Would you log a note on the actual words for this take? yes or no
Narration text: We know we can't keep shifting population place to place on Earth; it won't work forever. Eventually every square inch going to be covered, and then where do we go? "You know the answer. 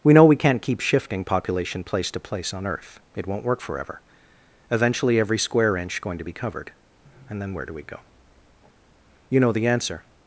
no